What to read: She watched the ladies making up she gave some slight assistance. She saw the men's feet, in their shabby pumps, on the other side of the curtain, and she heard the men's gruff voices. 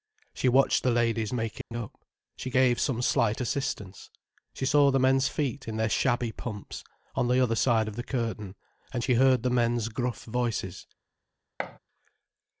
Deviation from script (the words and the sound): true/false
true